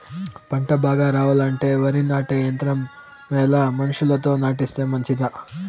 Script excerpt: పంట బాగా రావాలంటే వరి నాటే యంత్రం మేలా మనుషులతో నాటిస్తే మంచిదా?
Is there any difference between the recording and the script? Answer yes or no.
no